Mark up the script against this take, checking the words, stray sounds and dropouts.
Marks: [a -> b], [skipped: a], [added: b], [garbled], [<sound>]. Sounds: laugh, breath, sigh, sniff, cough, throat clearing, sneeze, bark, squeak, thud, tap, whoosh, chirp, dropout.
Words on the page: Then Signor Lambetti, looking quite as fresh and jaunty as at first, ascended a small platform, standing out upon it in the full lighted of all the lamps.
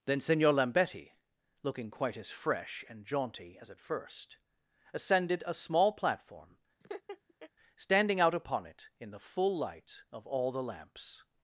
Then Signor Lambetti, looking quite as fresh and jaunty as at first, ascended a small platform, [laugh] standing out upon it in the full [lighted -> light] of all the lamps.